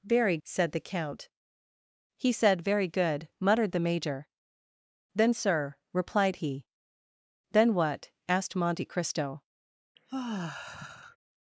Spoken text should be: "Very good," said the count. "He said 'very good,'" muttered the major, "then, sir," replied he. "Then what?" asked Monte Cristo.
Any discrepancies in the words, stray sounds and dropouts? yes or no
yes